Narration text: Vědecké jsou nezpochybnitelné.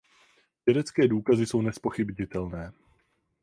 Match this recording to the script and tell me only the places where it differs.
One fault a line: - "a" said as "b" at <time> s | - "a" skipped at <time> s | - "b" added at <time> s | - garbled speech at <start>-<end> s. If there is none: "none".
- "důkazy" added at 1.1 s